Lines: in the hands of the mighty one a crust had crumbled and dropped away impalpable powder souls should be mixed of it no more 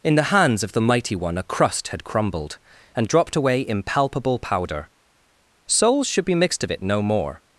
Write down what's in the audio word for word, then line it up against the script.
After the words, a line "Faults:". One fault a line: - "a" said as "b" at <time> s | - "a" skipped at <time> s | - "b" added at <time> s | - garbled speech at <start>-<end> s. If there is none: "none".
in the hands of the mighty one a crust had crumbled and dropped away impalpable powder souls should be mixed of it no more
Faults:
none